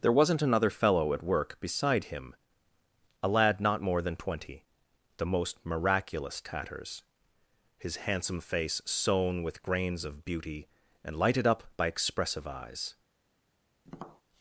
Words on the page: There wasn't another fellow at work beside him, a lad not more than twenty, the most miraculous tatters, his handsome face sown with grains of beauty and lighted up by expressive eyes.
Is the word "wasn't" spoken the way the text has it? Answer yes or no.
yes